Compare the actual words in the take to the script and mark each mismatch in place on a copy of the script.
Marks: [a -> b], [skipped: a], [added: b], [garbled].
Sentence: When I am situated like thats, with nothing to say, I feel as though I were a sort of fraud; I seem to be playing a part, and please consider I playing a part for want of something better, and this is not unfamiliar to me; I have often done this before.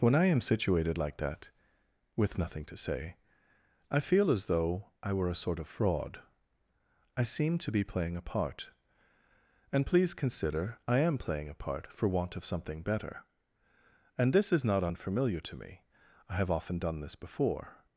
When I am situated like [thats, -> that] with nothing to say, I feel as though I were a sort of fraud; I seem to be playing a part, and please consider I [added: am] playing a part for want of something better, and this is not unfamiliar to me; I have often done this before.